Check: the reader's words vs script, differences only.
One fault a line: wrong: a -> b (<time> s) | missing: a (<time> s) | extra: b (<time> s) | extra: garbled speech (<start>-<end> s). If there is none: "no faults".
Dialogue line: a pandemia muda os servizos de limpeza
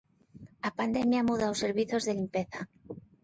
no faults